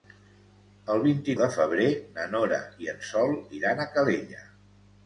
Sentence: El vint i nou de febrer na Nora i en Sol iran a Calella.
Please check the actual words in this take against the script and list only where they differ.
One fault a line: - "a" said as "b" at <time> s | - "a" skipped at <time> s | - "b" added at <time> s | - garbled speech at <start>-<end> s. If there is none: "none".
- "nou" skipped at 1.4 s